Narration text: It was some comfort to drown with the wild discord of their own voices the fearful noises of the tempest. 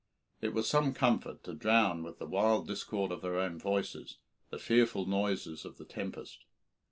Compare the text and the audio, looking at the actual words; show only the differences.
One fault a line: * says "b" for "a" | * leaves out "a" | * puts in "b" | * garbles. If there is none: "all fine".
all fine